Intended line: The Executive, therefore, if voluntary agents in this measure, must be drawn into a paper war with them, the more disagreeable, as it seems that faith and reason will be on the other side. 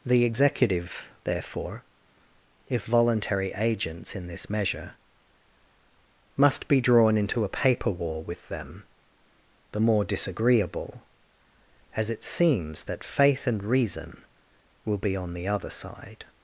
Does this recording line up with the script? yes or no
yes